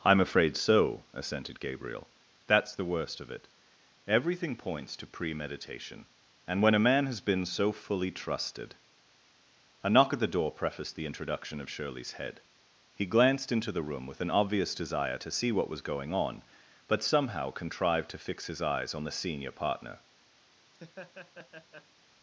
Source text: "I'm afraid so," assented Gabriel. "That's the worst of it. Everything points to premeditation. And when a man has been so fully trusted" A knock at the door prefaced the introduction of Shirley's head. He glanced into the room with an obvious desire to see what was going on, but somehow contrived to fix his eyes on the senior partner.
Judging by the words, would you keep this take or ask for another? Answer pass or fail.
pass